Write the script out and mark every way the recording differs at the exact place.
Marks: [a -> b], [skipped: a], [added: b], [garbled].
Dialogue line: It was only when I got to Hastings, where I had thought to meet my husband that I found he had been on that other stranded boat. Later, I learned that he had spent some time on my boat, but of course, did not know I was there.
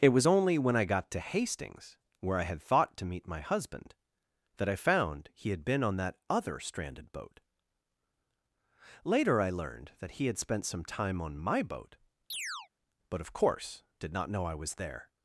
It was only when I got to Hastings, where I had thought to meet my husband that I found he had been on that other stranded boat. Later, I learned that he had spent some time on my boat, but of course, did not know I was there.